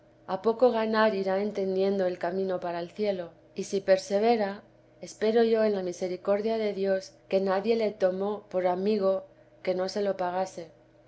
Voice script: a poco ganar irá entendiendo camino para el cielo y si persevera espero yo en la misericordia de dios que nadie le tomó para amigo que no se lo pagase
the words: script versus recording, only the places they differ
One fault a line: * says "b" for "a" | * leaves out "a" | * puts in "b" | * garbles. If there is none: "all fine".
* puts in "el"
* says "por" for "para"